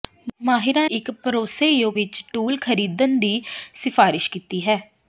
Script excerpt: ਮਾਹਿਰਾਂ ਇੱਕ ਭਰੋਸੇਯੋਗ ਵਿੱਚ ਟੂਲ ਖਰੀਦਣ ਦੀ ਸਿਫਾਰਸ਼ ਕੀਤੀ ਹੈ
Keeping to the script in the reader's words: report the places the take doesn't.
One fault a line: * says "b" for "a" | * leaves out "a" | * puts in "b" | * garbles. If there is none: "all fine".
all fine